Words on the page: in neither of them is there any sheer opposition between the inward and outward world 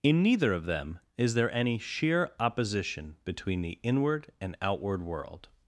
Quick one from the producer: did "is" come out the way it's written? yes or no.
yes